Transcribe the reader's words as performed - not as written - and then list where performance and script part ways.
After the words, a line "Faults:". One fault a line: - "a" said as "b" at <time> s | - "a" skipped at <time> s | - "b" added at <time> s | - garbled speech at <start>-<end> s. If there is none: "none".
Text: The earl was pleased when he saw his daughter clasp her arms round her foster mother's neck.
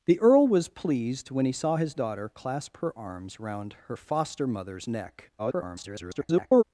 The earl was pleased when he saw his daughter clasp her arms round her foster mother's neck. [garbled]
Faults:
- garbled speech at 5.4-6.6 s